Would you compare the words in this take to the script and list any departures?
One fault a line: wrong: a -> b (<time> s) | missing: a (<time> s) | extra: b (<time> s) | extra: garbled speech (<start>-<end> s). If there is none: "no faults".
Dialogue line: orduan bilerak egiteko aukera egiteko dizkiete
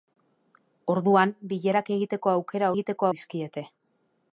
no faults